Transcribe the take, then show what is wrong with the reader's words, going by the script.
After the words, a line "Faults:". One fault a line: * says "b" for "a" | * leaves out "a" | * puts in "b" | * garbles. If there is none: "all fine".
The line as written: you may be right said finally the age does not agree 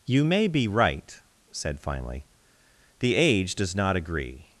you may be right said finally the age does not agree
Faults:
all fine